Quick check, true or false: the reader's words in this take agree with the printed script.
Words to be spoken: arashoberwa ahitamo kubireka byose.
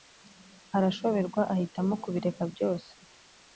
true